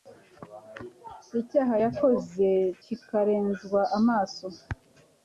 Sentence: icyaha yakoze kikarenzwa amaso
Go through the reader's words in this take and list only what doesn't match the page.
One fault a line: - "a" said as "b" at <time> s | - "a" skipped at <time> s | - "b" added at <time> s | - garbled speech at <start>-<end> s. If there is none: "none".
none